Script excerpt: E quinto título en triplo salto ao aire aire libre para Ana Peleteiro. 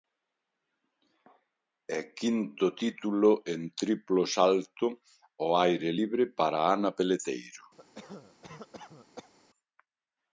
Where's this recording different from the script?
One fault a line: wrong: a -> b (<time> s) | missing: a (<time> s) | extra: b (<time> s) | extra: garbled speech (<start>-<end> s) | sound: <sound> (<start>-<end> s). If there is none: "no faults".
missing: aire (5.9 s)
sound: cough (7.8-9.3 s)